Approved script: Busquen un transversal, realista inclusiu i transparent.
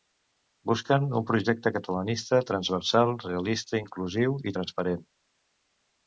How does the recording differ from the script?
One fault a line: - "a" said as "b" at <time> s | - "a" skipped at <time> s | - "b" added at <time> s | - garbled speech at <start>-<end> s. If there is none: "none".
- "projecte catalanista" added at 1.3 s